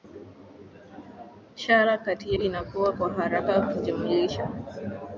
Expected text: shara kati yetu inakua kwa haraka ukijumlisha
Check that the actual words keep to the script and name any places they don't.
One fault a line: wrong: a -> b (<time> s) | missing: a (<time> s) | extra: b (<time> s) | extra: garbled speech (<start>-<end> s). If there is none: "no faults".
missing: yetu (2.4 s)